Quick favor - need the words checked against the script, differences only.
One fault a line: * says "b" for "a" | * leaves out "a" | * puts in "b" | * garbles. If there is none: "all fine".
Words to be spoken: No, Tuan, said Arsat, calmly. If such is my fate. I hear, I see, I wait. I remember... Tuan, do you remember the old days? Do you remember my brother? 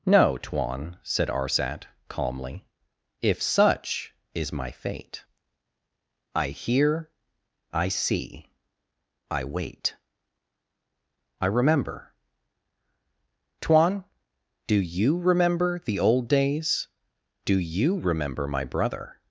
all fine